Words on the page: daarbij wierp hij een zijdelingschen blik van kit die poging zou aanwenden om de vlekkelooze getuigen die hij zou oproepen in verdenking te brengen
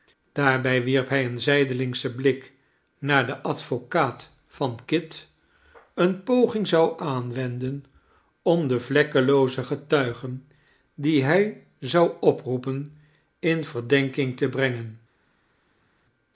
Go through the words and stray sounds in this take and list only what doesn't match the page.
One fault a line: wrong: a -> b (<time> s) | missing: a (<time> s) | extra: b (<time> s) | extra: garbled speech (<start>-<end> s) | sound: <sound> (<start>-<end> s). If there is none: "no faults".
extra: naar den advocaat (3.0 s)
wrong: die -> eene (5.9 s)